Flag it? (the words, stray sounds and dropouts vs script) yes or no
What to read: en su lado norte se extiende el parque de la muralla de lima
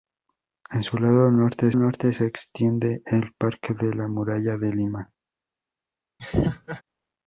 yes